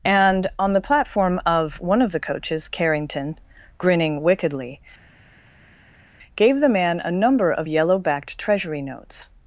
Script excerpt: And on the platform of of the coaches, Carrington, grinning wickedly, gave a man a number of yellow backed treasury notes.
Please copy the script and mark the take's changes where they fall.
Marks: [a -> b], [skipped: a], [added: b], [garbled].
And on the platform of [added: one] of the coaches, Carrington, grinning wickedly, gave [a -> the] man a number of yellow backed treasury notes.